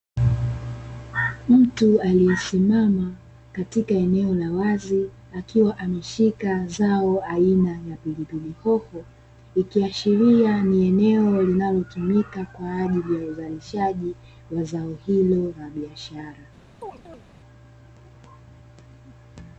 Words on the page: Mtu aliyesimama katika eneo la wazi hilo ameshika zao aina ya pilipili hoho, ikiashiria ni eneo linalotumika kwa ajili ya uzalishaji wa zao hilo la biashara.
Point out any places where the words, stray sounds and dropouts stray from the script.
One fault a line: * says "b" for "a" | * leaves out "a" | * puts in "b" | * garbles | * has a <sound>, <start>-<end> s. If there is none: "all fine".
* says "akiwa" for "hilo"
* has a chirp, 16.8-17.2 s